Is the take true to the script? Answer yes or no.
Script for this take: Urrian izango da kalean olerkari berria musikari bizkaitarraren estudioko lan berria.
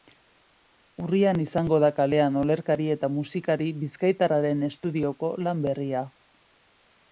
no